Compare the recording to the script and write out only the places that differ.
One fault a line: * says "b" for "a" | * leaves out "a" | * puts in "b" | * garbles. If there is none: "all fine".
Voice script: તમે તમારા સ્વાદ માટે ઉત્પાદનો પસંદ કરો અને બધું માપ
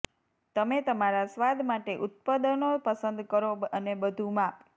all fine